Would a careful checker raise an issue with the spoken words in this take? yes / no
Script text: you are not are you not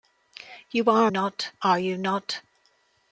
no